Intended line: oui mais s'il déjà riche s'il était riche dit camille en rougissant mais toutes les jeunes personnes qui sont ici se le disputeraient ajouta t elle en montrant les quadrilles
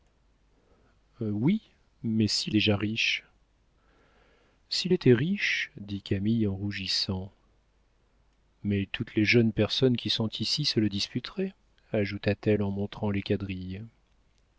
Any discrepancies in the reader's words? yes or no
no